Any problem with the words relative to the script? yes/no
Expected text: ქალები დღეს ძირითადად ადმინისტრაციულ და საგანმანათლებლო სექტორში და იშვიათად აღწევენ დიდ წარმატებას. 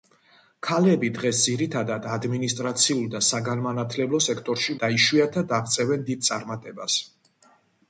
no